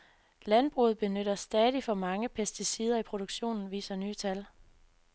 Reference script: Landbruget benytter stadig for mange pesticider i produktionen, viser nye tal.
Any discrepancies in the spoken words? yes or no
no